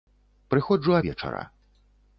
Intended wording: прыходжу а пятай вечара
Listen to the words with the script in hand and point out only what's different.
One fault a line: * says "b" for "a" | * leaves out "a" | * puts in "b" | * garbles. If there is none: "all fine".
* leaves out "пятай"